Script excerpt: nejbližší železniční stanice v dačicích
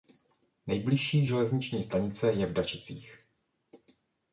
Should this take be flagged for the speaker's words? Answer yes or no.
yes